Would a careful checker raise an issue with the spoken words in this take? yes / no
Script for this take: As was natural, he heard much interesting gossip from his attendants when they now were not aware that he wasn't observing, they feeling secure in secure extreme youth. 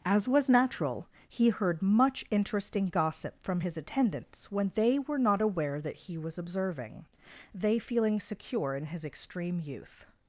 yes